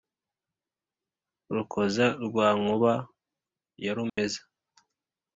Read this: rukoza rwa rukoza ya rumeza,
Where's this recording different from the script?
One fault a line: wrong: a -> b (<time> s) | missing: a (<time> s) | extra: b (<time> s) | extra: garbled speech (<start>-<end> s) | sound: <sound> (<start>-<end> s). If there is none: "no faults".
wrong: rukoza -> nkuba (2.6 s)
sound: dropout (4.1-4.2 s)